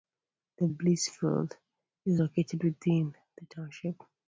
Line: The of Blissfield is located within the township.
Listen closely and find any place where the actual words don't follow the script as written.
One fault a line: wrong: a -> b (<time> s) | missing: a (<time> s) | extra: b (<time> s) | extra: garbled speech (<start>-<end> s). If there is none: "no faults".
no faults